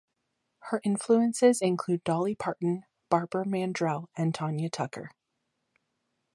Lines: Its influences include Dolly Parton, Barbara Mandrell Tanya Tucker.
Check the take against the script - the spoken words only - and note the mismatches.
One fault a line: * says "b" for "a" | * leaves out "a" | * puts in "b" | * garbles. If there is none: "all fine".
* says "Her" for "Its"
* puts in "and"